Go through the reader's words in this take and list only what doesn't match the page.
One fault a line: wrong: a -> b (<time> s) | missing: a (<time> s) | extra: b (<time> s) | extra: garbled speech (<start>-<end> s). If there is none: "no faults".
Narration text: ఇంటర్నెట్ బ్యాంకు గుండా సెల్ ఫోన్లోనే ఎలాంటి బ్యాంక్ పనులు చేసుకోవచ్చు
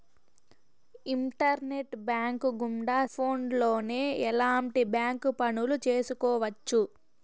missing: సెల్ (3.0 s)